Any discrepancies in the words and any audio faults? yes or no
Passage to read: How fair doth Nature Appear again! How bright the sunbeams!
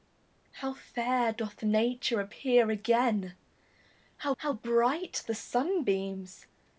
yes